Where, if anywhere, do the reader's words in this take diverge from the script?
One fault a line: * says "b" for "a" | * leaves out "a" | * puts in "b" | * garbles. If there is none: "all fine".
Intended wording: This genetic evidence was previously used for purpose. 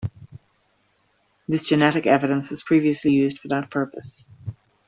* puts in "that"